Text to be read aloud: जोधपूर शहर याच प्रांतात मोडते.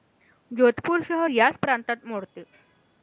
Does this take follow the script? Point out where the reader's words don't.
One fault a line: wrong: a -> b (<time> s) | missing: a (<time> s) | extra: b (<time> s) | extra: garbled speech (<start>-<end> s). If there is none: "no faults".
no faults